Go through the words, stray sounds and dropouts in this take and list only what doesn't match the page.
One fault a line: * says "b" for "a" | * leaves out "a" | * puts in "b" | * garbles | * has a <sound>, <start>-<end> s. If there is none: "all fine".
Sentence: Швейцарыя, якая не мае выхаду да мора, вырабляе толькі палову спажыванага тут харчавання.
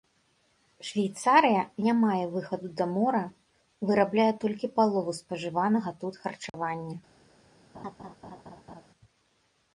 * leaves out "якая"
* has a dropout, 6.5-6.5 s
* has a laugh, 7.7-8.9 s